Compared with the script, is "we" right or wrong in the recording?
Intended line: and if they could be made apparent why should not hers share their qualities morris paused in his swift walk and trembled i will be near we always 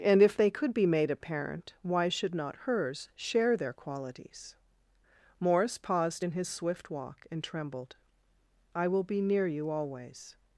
wrong